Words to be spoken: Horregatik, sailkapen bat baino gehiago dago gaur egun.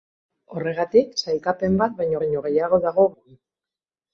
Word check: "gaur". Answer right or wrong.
wrong